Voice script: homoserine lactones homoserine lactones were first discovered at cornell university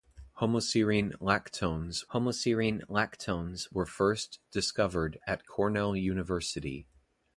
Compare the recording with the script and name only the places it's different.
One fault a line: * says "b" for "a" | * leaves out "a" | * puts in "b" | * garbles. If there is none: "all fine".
all fine